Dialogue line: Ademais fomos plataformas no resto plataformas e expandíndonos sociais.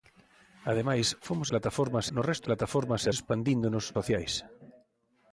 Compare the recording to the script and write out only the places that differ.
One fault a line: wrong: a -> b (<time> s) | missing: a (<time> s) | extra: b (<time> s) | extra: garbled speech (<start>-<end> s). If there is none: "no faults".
no faults